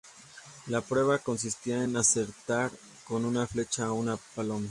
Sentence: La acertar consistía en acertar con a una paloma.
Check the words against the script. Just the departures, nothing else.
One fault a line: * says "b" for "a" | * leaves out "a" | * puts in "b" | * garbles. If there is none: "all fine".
* says "prueba" for "acertar"
* puts in "una flecha"